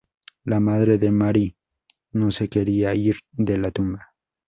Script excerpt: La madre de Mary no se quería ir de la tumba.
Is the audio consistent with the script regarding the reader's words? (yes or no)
yes